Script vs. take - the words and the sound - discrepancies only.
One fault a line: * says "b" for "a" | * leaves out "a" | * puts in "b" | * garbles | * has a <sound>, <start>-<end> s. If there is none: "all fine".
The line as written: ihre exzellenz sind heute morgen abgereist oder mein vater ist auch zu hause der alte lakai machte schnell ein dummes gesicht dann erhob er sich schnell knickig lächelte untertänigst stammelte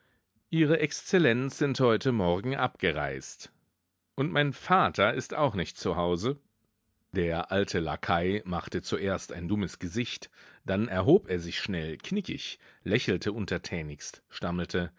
* says "und" for "oder"
* puts in "nicht"
* says "zuerst" for "schnell"